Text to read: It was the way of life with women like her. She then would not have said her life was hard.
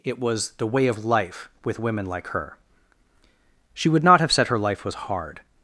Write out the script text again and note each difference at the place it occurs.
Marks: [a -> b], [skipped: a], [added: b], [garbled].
It was the way of life with women like her. She [skipped: then] would not have said her life was hard.